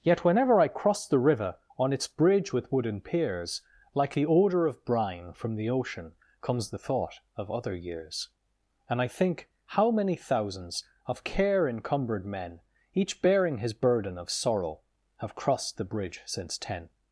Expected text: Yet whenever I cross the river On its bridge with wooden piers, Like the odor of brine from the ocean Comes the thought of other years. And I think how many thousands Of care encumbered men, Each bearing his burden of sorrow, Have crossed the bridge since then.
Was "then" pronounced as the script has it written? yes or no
no